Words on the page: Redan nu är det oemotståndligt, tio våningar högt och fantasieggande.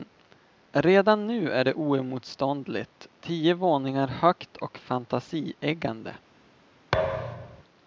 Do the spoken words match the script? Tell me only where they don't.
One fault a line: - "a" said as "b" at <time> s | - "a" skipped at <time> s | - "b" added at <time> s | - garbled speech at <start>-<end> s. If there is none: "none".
none